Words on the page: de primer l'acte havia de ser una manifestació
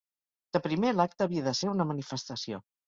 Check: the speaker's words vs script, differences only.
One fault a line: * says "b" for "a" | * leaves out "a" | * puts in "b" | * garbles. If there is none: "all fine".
all fine